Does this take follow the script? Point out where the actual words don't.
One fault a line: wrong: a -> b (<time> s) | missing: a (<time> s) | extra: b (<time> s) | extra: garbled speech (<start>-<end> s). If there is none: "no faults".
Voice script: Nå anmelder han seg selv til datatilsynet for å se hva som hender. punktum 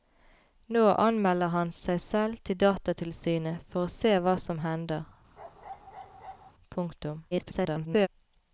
extra: garbled speech (7.3-8.1 s)